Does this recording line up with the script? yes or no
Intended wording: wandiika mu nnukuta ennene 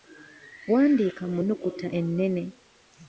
yes